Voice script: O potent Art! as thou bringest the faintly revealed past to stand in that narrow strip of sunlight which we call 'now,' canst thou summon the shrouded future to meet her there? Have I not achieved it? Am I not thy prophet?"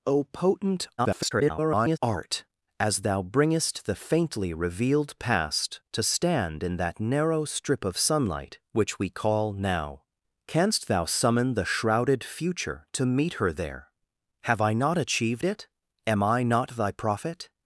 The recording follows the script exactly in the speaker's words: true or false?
false